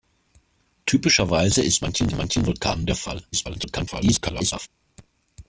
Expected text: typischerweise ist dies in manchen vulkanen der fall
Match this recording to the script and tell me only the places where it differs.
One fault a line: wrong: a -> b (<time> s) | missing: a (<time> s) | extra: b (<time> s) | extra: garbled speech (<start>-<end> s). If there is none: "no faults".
wrong: dies -> manchen (1.8 s)
extra: garbled speech (3.3-4.7 s)